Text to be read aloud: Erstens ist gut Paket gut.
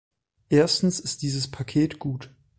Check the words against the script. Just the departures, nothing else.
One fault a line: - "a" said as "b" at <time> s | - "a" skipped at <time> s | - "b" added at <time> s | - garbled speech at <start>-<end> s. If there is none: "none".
- "gut" said as "dieses" at 1.2 s